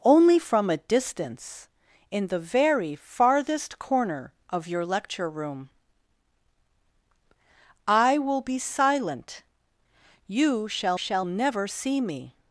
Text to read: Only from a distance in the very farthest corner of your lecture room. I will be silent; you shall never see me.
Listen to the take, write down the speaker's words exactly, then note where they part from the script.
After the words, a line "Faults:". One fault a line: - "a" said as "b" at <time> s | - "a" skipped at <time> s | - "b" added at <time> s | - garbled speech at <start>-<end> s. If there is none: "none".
Only from a distance in the very farthest corner of your lecture room. I will be silent; you shall shall never see me.
Faults:
- "shall" added at 10.9 s